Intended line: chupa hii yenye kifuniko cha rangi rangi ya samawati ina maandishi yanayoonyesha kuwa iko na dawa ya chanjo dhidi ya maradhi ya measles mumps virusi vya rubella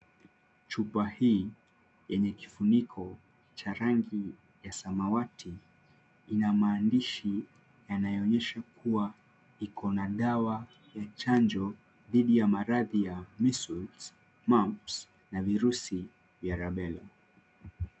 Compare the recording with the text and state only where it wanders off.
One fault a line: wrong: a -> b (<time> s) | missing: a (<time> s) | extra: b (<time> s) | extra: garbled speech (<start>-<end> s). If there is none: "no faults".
missing: rangi (4.3 s)
extra: na (15.3 s)